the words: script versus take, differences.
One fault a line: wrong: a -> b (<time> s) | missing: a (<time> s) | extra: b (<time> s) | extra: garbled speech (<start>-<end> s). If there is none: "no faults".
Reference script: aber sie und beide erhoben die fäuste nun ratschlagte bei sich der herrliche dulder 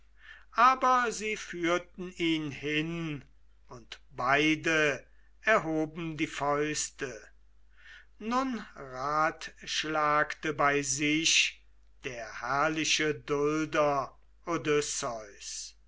extra: führten ihn hin (1.3 s)